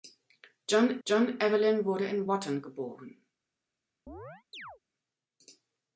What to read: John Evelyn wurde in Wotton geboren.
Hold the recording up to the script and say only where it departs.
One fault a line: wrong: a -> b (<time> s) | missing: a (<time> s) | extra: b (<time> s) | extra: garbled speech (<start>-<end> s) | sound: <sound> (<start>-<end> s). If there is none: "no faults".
extra: john (1.0 s)
sound: chirp (4.1-4.8 s)